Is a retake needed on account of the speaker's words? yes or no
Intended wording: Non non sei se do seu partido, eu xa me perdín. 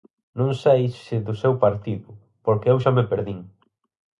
yes